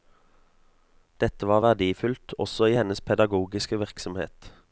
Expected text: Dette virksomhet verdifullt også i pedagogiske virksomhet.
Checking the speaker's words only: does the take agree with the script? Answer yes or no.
no